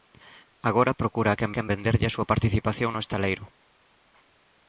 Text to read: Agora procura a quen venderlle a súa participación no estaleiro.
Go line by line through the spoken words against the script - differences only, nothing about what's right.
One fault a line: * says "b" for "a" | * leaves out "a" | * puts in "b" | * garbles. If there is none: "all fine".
* puts in "quen"